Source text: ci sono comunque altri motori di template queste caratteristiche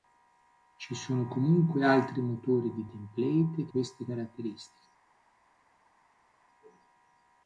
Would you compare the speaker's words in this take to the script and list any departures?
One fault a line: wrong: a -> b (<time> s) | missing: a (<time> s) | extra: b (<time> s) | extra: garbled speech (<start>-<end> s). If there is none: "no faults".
no faults